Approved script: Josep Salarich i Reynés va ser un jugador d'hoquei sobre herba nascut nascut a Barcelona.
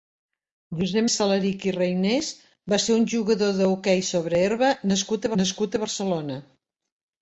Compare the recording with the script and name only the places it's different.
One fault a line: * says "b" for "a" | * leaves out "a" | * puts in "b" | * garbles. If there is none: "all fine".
all fine